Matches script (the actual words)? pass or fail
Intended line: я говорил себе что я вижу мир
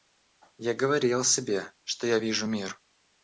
pass